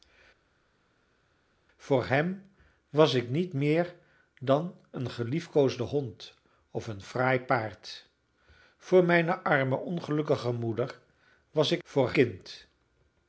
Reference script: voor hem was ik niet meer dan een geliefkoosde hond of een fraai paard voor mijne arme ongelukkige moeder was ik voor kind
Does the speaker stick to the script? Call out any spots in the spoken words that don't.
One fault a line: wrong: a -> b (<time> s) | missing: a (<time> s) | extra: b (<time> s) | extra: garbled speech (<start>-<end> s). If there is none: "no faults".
no faults